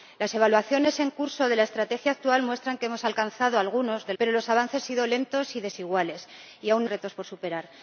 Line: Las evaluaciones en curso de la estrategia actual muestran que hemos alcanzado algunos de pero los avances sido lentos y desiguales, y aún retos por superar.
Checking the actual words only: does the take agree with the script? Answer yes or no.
yes